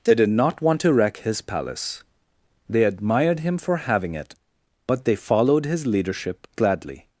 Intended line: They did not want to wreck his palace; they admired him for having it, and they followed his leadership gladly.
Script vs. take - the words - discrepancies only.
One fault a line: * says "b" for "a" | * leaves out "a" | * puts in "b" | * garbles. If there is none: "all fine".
* says "but" for "and"